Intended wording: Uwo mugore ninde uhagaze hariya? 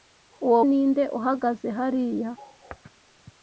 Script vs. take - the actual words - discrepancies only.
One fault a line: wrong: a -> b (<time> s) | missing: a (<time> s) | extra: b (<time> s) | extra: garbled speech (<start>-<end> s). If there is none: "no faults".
missing: mugore (0.6 s)